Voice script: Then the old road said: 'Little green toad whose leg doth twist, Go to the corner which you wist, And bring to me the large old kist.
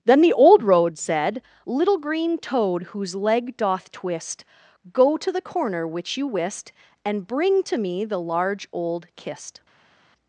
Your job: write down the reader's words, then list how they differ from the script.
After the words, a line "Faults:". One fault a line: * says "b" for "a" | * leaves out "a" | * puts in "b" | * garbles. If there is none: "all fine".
Then the old road said: 'Little green toad whose leg doth twist, Go to the corner which you wist, And bring to me the large old kist.
Faults:
all fine